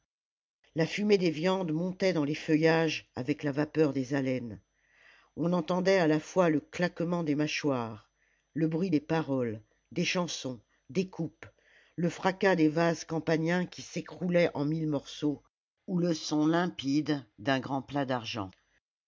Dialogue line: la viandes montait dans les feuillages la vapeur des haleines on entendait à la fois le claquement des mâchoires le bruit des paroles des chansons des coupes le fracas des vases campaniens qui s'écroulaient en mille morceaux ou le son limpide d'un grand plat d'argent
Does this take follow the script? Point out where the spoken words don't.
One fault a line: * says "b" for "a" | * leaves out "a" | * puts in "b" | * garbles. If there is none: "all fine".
* puts in "fumée des"
* puts in "avec"